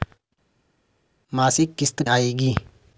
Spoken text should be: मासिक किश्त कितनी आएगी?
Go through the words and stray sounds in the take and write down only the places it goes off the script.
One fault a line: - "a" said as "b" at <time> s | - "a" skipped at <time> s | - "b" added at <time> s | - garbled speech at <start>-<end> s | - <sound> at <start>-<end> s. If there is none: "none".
- "कितनी" skipped at 2.0 s